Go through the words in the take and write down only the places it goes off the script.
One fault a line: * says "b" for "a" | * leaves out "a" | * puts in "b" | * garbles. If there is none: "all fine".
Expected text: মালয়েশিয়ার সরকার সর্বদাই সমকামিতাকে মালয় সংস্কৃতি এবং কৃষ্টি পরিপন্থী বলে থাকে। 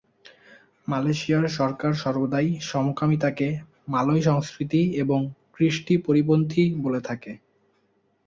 all fine